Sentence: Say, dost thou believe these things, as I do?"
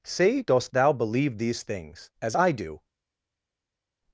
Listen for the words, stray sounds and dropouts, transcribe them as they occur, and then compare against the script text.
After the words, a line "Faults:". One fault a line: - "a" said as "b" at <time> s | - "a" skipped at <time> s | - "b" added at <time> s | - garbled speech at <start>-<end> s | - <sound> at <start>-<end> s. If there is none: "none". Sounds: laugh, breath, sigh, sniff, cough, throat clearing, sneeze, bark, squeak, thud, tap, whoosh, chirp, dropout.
Say, dost thou believe these things, as I do?"
Faults:
none